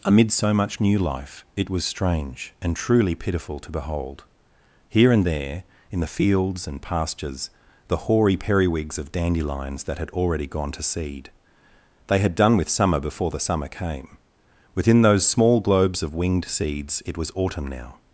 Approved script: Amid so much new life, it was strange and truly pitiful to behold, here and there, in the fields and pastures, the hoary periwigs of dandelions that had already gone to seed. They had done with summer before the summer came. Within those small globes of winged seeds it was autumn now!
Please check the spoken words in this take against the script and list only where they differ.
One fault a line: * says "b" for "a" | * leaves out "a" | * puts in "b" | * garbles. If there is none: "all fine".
all fine